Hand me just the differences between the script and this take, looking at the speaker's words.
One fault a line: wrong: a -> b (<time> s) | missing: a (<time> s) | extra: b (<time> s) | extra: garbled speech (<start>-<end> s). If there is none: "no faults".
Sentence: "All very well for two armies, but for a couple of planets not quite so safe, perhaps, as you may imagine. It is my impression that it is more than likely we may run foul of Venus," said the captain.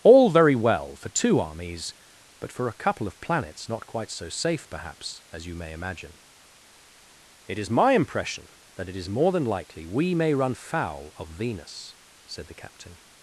no faults